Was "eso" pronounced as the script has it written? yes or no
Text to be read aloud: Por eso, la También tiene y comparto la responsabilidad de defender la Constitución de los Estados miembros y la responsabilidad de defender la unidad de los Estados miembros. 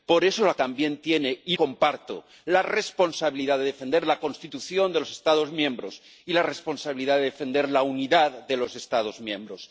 yes